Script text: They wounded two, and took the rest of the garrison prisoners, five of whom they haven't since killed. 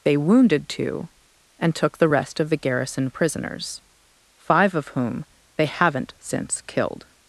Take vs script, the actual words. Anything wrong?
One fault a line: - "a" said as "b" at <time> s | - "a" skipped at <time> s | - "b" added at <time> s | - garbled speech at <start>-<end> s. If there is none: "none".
none